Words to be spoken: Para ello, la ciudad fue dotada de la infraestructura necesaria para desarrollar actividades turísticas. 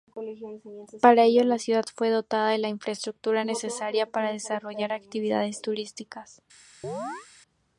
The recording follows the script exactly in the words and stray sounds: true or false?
false